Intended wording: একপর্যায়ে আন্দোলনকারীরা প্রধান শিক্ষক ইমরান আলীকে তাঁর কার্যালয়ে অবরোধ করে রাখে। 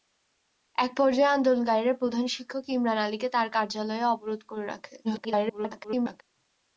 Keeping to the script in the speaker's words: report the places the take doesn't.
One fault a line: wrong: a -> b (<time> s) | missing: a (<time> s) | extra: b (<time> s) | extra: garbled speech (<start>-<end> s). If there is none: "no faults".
extra: garbled speech (5.0-6.2 s)